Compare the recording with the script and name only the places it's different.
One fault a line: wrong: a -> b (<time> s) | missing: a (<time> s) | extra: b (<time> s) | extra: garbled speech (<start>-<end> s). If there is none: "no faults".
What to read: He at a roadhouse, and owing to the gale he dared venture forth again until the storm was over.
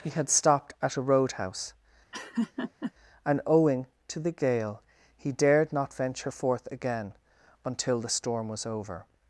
extra: had stopped (0.1 s)
extra: not (5.7 s)